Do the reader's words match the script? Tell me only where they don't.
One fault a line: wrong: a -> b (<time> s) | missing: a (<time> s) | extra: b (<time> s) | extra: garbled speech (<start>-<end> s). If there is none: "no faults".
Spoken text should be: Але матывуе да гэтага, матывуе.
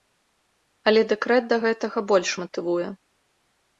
wrong: матывуе -> дэкрэт (1.1 s)
extra: больш (2.1 s)